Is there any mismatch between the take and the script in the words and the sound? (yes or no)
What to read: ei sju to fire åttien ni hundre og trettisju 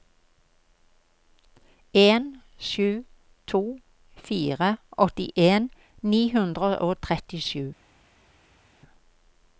yes